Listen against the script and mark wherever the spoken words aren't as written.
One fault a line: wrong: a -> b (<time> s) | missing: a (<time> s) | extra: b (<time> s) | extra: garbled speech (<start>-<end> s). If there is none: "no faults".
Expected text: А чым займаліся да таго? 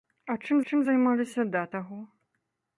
extra: чым (0.7 s)